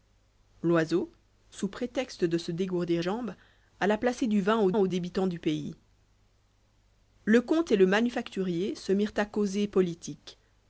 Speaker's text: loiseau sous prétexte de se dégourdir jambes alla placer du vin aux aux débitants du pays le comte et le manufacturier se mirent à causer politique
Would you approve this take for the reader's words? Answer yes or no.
yes